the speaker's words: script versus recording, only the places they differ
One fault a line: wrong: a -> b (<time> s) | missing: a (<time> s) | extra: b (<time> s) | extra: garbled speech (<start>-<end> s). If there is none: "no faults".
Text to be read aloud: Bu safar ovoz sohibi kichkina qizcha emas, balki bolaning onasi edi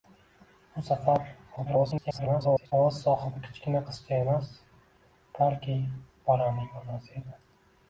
extra: garbled speech (1.6-2.7 s)